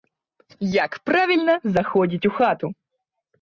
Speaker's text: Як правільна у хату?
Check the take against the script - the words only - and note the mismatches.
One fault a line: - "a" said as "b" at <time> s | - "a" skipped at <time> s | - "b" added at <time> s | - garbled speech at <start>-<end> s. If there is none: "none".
- "заходзіць" added at 1.8 s